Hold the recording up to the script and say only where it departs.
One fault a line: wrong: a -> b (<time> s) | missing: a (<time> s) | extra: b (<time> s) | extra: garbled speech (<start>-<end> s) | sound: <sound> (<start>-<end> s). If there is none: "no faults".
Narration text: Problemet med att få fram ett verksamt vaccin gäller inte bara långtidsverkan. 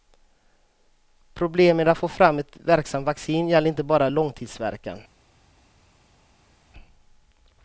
no faults